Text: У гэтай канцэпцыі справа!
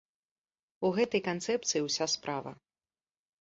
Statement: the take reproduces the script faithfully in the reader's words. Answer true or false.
false